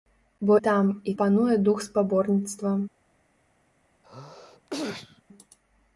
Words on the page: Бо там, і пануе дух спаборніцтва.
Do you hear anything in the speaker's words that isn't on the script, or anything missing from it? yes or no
no